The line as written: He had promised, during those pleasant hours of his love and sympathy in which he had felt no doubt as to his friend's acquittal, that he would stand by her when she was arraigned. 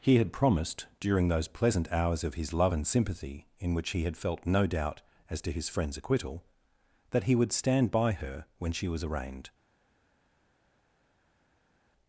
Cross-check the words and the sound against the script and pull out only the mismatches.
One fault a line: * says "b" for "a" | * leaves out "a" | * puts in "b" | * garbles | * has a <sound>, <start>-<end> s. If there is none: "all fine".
all fine